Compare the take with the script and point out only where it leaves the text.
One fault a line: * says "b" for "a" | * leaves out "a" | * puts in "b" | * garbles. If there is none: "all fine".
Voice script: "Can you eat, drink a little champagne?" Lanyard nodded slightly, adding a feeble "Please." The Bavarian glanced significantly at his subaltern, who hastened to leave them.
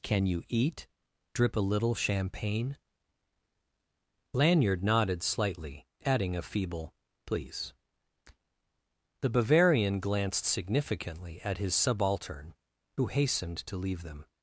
* says "drip" for "drink"